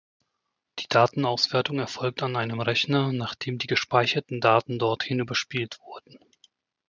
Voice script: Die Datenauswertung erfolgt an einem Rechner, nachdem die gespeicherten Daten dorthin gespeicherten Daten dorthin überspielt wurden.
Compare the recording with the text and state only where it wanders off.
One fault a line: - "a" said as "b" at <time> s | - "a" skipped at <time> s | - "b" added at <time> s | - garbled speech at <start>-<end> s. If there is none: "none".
- "gespeicherten Daten dorthin" skipped at 5.2 s